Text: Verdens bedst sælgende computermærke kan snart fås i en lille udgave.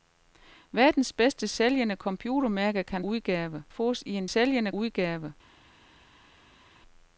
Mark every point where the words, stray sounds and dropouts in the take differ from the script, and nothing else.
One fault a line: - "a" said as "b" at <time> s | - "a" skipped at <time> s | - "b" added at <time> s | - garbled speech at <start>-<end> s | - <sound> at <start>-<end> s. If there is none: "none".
- "snart" said as "udgave" at 3.0 s
- "lille" said as "sælgende" at 4.2 s